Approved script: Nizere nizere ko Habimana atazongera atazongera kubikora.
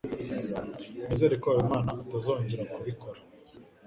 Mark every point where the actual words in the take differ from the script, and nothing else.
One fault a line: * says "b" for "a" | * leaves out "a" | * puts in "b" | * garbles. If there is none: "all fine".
* leaves out "nizere"
* leaves out "atazongera"